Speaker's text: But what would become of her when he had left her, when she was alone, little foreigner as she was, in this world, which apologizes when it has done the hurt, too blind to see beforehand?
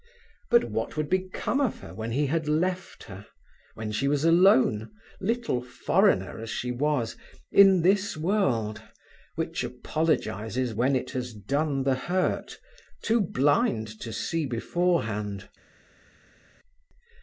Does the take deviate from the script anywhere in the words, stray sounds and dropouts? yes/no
no